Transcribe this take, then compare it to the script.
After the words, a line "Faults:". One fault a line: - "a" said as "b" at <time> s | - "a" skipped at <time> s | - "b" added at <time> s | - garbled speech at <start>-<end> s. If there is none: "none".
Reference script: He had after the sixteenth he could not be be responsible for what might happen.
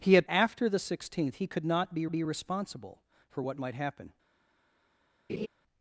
He had after the sixteenth he could not be be responsible for what might happen.
Faults:
none